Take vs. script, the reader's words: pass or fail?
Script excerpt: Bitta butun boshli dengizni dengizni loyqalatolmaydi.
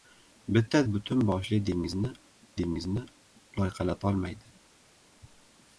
pass